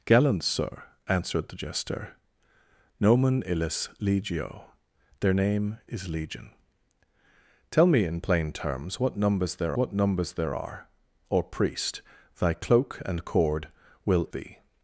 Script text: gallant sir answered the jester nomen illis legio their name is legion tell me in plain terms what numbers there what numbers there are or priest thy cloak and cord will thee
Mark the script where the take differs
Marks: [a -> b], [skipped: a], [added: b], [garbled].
gallant sir answered the jester nomen illis legio their name is legion tell me in plain terms what numbers there what numbers there are or priest thy cloak and cord will thee